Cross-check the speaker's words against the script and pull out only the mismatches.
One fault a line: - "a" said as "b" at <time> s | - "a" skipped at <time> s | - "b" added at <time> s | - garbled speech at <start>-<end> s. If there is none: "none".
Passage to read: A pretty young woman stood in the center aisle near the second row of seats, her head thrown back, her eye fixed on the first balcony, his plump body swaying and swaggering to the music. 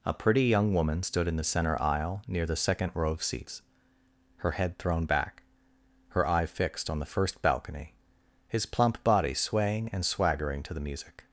none